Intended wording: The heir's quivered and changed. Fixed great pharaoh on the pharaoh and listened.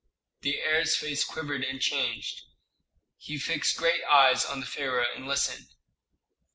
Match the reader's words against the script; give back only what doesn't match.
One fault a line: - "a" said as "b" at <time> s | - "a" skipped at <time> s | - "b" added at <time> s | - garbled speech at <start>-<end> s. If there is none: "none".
- "face" added at 0.9 s
- "He" added at 3.2 s
- "pharaoh" said as "eyes" at 4.0 s